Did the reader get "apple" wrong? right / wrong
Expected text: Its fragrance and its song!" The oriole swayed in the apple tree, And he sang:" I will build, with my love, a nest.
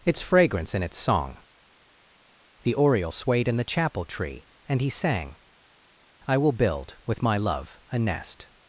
wrong